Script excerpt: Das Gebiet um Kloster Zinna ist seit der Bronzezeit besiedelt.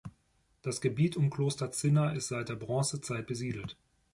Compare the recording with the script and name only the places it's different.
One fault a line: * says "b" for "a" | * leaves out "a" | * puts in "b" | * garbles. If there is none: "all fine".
all fine